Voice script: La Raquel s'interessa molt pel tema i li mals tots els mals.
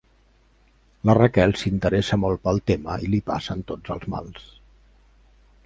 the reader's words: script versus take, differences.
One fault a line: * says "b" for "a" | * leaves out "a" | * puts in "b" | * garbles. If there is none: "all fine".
* says "passen" for "mals"